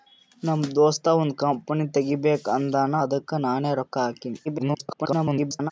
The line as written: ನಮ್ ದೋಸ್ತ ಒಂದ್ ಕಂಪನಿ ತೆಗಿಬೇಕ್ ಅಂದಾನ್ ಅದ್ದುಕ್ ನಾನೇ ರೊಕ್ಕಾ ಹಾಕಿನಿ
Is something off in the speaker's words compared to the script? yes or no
yes